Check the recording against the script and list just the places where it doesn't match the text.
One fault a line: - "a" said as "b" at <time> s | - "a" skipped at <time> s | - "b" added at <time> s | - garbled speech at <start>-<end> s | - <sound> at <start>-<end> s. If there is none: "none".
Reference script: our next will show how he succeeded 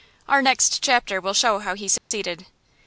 - "chapter" added at 0.8 s
- dropout at 2.0-2.1 s